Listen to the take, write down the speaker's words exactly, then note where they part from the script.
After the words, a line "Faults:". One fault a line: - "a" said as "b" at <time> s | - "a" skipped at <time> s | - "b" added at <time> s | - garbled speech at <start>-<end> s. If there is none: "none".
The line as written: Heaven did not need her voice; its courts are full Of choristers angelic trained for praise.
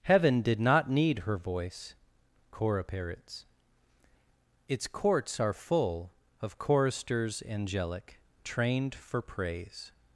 Heaven did not need her voice; cora parrots its courts are full Of choristers angelic trained for praise.
Faults:
- "cora parrots" added at 2.5 s